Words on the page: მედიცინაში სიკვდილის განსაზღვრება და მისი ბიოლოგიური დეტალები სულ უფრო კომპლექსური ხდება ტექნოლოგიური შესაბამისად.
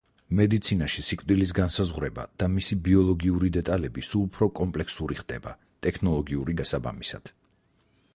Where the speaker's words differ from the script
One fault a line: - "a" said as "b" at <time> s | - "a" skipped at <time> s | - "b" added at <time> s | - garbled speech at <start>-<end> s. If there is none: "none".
none